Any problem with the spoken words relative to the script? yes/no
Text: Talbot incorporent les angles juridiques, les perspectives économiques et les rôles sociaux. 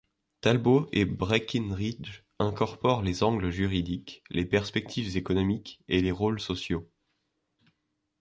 yes